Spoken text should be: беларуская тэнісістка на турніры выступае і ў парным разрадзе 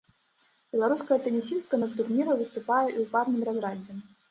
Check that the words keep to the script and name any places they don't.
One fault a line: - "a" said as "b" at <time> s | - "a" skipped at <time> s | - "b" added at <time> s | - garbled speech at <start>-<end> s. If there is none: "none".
none